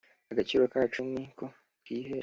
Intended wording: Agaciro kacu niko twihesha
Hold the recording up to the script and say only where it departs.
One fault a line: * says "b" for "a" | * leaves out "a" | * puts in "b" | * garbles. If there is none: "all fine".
all fine